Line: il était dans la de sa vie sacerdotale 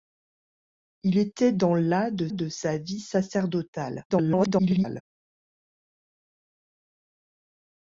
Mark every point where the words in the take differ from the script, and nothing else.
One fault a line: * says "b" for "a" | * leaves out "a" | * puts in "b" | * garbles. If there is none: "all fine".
* puts in "de"
* garbles